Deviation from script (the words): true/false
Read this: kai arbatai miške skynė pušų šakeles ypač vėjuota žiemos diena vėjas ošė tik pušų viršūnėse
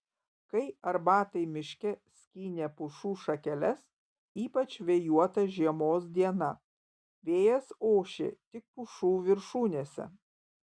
false